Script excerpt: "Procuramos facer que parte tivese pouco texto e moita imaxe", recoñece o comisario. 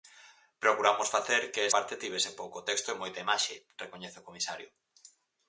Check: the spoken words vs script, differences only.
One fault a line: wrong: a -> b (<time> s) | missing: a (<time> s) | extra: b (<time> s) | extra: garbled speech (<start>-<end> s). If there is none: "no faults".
no faults